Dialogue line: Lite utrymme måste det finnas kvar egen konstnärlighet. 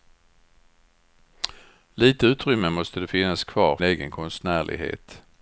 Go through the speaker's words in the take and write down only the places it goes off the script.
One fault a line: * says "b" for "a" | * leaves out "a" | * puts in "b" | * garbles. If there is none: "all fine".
all fine